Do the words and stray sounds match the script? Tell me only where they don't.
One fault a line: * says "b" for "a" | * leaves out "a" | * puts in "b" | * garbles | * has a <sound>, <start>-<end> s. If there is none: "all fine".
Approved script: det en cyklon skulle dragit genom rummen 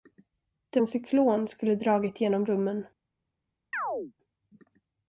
* has a chirp, 3.7-4.1 s